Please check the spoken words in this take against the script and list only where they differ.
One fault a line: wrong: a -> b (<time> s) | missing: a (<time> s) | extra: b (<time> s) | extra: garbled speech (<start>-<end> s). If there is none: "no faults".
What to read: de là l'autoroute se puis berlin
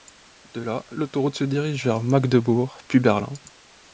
extra: dirige vers magdebourg (1.4 s)